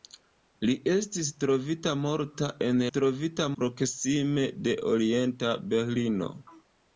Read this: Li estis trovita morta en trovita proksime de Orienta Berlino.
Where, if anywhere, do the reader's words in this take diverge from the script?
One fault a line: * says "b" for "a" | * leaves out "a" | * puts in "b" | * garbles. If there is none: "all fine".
all fine